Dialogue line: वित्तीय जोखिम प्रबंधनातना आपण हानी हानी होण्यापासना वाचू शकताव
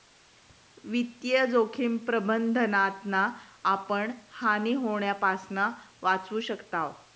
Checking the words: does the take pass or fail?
fail